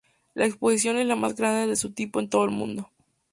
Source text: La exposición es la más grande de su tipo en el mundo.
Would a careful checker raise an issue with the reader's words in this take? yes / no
yes